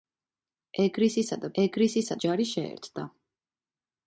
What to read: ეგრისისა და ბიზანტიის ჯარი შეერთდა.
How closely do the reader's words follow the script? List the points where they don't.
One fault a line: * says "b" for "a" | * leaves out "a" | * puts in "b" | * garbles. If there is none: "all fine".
* says "ეგრისისა" for "ბიზანტიის"